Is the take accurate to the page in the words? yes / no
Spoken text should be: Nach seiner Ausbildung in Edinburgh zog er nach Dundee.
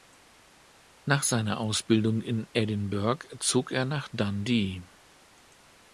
yes